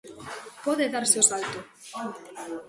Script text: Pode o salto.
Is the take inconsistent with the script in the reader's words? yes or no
yes